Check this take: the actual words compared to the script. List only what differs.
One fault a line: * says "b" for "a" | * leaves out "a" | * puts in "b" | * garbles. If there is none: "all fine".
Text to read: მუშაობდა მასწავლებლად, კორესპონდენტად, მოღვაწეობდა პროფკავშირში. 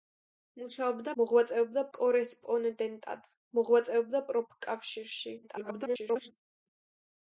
* says "მოღვაწეობდა" for "მასწავლებლად"
* garbles